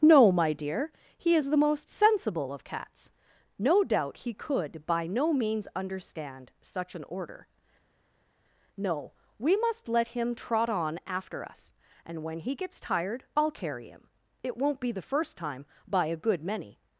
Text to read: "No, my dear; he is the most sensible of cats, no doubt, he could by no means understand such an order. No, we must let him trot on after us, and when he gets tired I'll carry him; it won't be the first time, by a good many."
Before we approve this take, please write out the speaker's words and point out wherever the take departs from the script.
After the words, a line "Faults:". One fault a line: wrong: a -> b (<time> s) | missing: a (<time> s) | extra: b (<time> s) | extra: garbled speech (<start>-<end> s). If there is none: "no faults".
"No, my dear; he is the most sensible of cats, no doubt, he could by no means understand such an order. No, we must let him trot on after us, and when he gets tired I'll carry him; it won't be the first time, by a good many."
Faults:
no faults